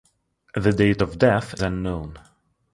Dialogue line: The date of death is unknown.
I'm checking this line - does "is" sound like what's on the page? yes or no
no